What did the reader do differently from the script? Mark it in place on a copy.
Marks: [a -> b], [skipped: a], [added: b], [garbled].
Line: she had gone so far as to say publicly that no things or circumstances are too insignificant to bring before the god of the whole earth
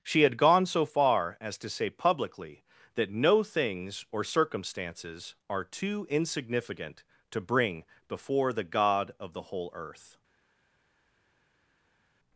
she had gone so far as to say publicly that no things or circumstances are too insignificant to bring before the god of the whole earth